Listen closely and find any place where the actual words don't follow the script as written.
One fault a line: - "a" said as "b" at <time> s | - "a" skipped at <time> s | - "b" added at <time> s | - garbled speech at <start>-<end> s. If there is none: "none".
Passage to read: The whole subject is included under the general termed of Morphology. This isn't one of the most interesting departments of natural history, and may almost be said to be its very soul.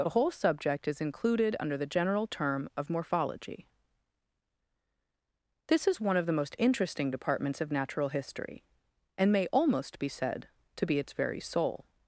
- "termed" said as "term" at 2.2 s
- "isn't" said as "is" at 5.9 s